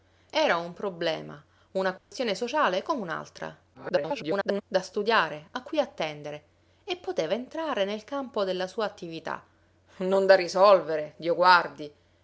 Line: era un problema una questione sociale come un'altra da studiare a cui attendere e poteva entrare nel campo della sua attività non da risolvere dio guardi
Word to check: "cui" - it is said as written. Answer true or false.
true